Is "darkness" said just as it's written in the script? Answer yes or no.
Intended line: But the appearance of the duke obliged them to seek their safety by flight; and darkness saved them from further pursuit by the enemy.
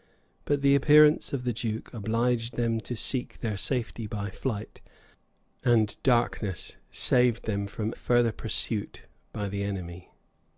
yes